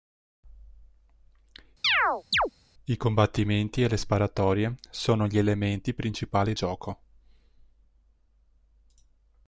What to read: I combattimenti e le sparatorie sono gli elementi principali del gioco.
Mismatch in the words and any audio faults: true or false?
true